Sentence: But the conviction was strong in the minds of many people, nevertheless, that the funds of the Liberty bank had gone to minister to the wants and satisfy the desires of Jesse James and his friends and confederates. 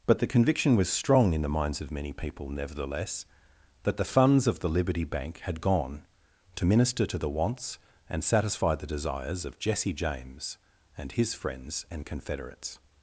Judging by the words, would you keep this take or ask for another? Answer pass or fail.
pass